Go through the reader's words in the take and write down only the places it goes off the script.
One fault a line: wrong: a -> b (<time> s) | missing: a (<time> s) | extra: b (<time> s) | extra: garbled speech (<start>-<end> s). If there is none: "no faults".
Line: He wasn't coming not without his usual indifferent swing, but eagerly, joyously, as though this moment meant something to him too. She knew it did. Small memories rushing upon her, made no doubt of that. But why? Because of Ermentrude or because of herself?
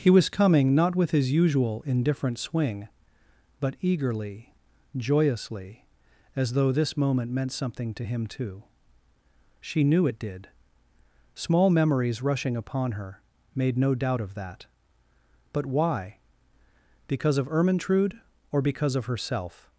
wrong: wasn't -> was (0.1 s)
wrong: without -> with (0.9 s)